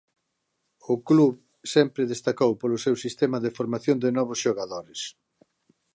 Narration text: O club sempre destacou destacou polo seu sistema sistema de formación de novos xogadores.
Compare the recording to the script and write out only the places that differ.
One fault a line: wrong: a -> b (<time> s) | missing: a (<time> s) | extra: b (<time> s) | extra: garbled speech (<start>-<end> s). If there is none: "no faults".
missing: destacou (2.5 s)
missing: sistema (3.4 s)